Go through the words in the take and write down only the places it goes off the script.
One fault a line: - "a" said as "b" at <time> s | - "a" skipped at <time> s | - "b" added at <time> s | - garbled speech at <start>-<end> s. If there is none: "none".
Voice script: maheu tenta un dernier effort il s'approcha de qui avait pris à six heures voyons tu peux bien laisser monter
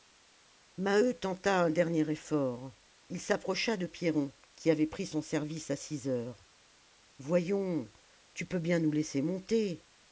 - "pierron" added at 3.9 s
- "son service" added at 5.1 s
- "nous" added at 8.8 s